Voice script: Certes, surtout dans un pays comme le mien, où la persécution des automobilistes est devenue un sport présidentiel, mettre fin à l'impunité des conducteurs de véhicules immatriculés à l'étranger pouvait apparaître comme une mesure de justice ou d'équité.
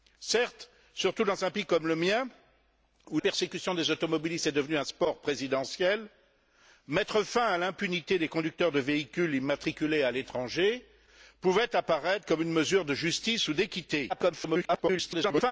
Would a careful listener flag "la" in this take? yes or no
yes